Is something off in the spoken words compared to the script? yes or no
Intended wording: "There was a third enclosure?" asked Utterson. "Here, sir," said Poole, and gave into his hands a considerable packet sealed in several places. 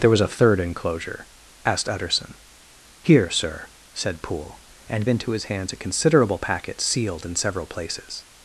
yes